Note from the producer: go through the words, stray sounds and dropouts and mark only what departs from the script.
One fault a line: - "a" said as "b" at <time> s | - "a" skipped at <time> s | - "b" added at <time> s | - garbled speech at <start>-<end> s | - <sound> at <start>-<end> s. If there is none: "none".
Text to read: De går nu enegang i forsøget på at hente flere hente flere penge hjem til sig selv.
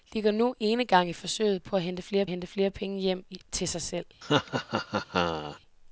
- laugh at 4.2-5.6 s